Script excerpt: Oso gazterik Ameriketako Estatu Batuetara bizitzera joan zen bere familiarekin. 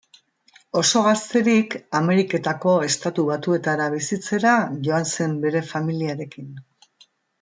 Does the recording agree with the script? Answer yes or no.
yes